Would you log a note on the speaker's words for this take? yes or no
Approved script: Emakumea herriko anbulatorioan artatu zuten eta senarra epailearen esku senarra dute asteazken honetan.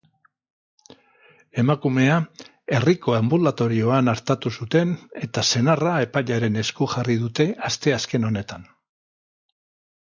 yes